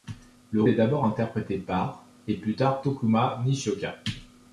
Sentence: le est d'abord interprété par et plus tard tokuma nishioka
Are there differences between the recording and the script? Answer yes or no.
no